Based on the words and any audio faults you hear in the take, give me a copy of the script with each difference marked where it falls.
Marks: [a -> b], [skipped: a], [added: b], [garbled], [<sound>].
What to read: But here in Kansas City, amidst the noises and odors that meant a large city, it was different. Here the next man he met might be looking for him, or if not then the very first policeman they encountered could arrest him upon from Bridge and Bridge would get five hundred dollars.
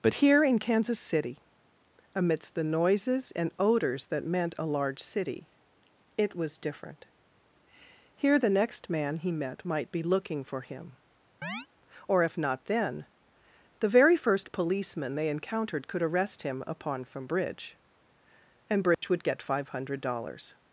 But here in Kansas City, amidst the noises and odors that meant a large city, it was different. Here the next man he met might be looking for him, [chirp] or if not then the very first policeman they encountered could arrest him upon from Bridge and Bridge [dropout] would get five hundred dollars.